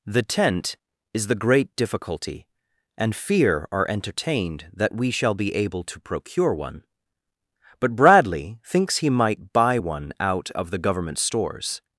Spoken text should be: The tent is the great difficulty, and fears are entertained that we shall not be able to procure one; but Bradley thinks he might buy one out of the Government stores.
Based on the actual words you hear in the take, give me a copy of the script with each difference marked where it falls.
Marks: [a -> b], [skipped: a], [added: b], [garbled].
The tent is the great difficulty, and [fears -> fear] are entertained that we shall [skipped: not] be able to procure one; but Bradley thinks he might buy one out of the Government stores.